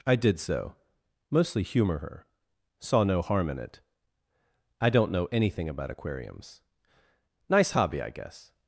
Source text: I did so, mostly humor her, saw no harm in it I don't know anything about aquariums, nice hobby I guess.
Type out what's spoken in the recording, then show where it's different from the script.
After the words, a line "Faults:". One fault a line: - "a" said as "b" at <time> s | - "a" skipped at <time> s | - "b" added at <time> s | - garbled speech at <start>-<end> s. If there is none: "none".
I did so, mostly humor her, saw no harm in it I don't know anything about aquariums, nice hobby I guess.
Faults:
none